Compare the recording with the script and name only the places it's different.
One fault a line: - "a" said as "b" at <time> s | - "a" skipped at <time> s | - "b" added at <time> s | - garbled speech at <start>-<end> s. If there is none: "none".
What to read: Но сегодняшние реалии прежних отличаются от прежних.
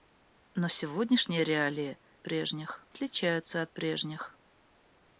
none